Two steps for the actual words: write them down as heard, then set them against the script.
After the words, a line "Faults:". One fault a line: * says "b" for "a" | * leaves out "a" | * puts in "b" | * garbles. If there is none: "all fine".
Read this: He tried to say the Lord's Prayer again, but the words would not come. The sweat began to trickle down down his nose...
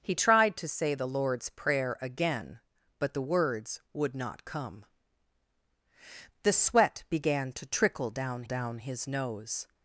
He tried to say the Lord's Prayer again, but the words would not come. The sweat began to trickle down down his nose...
Faults:
all fine